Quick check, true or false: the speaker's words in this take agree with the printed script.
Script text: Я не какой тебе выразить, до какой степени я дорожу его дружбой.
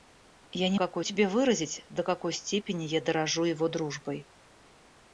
true